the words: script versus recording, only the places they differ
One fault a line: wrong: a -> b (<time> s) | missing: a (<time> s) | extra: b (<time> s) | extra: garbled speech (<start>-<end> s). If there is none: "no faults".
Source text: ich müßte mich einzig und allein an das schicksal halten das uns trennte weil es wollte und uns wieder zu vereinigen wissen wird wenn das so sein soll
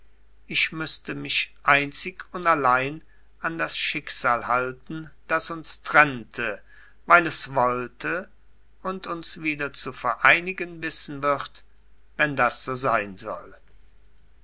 no faults